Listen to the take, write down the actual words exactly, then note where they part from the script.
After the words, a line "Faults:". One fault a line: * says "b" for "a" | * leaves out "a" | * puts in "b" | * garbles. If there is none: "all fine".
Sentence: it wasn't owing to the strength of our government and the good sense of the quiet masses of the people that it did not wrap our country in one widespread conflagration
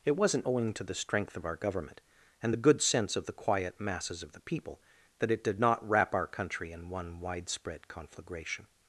it wasn't owing to the strength of our government and the good sense of the quiet masses of the people that it did not wrap our country in one widespread conflagration
Faults:
all fine